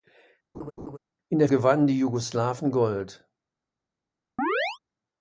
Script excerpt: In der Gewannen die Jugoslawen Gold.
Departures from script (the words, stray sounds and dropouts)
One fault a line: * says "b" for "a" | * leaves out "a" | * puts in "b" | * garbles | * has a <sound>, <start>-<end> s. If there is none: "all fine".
* has a laugh, 0.5-1.0 s
* has a chirp, 4.4-4.8 s